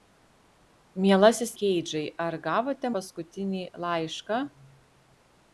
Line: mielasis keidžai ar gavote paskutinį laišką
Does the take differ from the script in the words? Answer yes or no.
no